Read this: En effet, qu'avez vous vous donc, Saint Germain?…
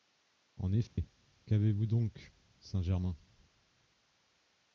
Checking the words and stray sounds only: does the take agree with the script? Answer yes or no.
no